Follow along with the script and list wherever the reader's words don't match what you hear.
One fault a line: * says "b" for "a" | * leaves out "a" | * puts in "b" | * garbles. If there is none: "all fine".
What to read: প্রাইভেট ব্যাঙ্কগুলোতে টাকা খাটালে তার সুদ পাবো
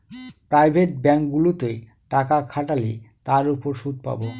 * puts in "উপর"